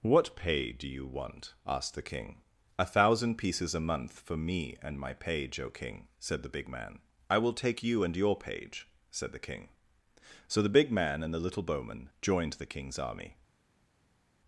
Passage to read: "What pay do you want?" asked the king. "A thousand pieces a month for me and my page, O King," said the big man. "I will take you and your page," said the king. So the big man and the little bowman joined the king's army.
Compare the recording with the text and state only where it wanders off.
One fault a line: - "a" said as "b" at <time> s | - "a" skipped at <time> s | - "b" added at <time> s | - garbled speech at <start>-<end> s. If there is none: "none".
none